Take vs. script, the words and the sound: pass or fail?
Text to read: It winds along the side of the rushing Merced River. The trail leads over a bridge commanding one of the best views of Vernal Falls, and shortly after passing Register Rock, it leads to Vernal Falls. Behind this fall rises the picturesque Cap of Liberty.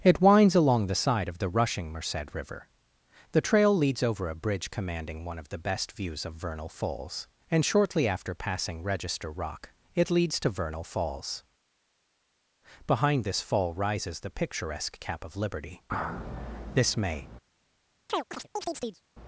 fail